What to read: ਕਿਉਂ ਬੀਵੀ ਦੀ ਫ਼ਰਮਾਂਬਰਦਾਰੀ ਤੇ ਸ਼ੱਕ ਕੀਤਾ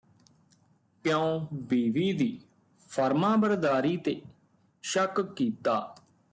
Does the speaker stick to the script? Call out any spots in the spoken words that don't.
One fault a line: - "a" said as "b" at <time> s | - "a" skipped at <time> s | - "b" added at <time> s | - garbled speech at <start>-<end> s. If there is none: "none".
none